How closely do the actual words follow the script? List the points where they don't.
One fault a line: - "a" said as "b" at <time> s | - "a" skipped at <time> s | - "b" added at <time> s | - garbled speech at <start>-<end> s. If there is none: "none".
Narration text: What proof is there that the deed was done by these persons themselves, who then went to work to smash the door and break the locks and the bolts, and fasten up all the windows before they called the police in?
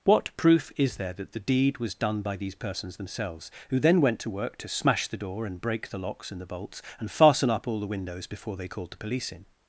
none